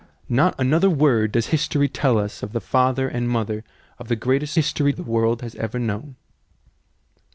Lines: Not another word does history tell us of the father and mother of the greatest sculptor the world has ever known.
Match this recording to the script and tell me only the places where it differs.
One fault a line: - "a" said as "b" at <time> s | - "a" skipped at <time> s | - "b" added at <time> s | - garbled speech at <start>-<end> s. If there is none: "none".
- "sculptor" said as "history" at 4.6 s